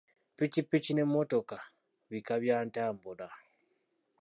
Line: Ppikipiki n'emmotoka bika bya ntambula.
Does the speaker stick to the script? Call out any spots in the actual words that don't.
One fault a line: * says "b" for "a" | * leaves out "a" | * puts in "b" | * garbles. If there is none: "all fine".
all fine